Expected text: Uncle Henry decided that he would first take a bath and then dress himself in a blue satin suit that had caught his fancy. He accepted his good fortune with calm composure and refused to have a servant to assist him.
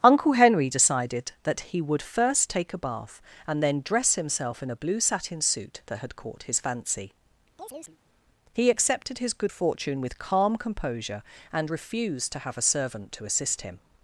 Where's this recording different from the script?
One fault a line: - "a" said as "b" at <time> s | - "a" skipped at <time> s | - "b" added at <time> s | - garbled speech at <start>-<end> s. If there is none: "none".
none